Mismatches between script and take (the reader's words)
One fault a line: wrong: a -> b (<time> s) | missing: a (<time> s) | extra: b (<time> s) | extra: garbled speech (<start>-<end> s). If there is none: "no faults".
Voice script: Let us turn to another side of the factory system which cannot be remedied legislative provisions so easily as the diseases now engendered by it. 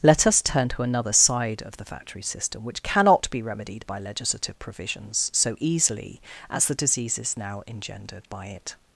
extra: by (3.9 s)